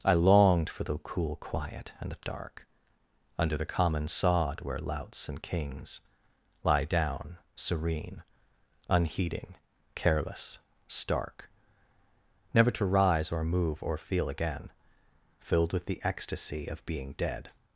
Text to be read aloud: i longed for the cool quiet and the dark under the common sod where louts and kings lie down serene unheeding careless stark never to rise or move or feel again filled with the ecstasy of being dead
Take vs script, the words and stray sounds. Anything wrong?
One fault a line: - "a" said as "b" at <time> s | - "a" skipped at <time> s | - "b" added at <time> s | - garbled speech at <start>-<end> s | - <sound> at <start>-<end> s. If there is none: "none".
none